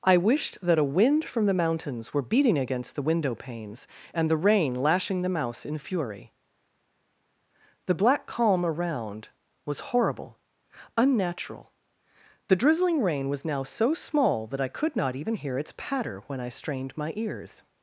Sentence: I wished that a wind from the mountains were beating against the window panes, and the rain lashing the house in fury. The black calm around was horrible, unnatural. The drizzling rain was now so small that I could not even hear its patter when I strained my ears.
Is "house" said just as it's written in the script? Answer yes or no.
no